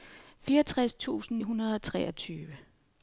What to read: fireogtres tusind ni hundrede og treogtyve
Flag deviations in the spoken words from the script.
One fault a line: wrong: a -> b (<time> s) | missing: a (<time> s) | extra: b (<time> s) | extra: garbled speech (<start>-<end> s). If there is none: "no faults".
missing: ni (1.4 s)